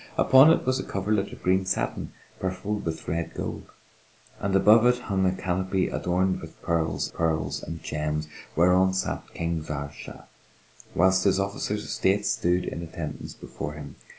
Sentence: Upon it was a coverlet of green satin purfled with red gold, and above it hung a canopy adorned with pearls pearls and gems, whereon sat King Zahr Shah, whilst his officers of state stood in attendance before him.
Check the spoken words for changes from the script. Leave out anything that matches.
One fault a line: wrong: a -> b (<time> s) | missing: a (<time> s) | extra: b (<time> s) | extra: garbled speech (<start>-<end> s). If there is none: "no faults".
no faults